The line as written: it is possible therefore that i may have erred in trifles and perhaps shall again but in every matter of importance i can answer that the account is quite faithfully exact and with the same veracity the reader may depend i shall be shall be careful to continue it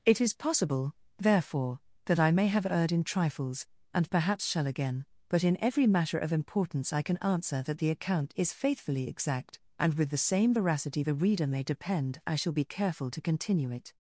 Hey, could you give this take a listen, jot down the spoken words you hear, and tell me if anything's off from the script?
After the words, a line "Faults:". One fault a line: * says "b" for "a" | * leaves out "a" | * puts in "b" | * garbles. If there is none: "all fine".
it is possible therefore that i may have erred in trifles and perhaps shall again but in every matter of importance i can answer that the account is faithfully exact and with the same veracity the reader may depend i shall be careful to continue it
Faults:
* leaves out "quite"
* leaves out "shall be"